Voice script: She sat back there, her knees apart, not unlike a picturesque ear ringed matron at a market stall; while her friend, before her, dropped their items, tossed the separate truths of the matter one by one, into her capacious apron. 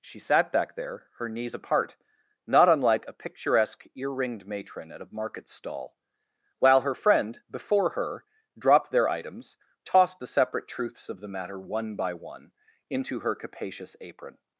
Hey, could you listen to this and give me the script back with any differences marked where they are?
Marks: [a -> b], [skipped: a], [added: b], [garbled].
She sat back there, her knees apart, not unlike a picturesque ear ringed matron at a market stall; while her friend, before her, dropped their items, tossed the separate truths of the matter one by one, into her capacious apron.